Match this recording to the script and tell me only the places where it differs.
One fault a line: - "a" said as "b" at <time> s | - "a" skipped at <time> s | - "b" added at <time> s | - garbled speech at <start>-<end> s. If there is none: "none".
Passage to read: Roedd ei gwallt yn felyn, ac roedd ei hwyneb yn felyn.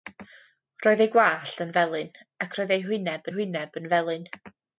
- "hwyneb" added at 3.4 s